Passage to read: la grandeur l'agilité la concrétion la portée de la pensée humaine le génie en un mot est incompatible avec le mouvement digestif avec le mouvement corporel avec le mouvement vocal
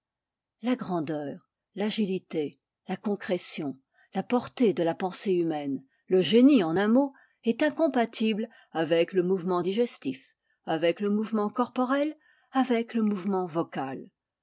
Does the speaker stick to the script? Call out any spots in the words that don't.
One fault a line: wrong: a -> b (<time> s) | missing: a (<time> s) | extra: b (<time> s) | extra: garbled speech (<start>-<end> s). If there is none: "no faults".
no faults